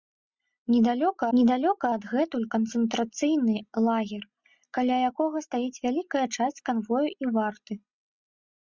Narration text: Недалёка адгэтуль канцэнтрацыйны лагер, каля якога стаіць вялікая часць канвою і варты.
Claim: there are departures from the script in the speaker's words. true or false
true